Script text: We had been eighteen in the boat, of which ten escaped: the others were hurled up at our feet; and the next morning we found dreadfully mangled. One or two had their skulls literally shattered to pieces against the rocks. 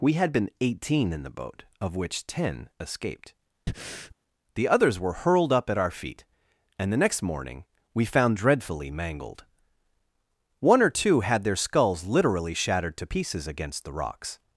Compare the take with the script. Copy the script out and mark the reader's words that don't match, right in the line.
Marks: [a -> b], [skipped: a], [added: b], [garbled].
We had been eighteen in the boat, of which ten escaped: the others were hurled up at our feet; and the next morning we found dreadfully mangled. One or two had their skulls literally shattered to pieces against the rocks.